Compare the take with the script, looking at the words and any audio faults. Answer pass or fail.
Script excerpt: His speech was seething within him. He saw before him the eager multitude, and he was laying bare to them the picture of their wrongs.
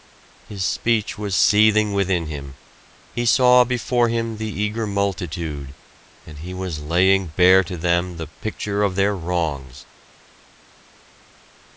pass